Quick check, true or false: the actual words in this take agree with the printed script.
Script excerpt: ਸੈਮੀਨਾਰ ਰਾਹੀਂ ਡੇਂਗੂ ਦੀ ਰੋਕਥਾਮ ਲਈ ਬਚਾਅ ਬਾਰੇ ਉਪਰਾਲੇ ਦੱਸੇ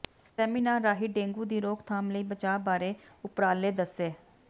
true